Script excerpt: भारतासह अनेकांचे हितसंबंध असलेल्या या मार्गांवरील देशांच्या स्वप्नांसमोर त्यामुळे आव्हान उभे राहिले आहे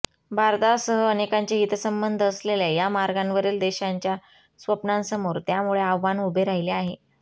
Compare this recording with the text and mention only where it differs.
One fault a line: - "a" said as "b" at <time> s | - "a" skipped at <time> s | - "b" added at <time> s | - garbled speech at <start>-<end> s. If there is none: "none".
none